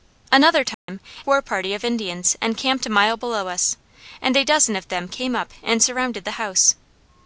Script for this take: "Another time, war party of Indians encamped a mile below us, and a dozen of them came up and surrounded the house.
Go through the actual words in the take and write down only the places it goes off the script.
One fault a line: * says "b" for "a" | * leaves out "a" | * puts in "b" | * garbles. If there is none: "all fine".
all fine